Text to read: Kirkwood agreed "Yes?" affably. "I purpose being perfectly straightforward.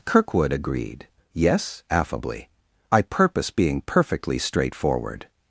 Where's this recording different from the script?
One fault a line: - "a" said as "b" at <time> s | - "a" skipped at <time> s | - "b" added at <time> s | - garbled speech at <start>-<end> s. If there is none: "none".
none